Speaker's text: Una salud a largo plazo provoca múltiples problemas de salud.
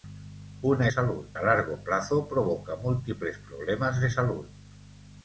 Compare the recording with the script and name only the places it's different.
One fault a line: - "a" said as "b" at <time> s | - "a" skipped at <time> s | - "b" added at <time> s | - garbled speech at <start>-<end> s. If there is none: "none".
none